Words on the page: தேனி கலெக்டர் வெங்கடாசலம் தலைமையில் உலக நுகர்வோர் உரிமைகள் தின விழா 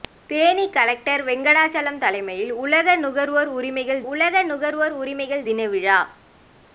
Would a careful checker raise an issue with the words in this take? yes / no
yes